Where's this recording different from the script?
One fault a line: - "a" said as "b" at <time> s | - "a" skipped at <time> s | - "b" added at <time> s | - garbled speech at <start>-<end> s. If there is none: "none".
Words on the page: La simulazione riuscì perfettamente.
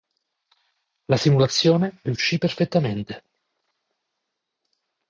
none